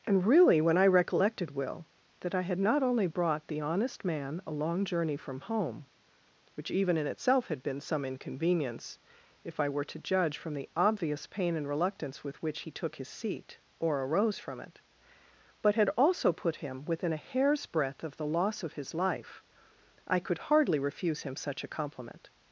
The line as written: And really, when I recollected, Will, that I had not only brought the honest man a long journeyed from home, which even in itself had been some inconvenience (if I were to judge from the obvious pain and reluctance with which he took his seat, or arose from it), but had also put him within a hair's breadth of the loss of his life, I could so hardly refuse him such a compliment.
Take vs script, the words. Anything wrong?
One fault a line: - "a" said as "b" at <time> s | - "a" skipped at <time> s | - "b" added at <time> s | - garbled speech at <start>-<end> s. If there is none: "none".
- "journeyed" said as "journey" at 4.8 s
- "so" skipped at 20.4 s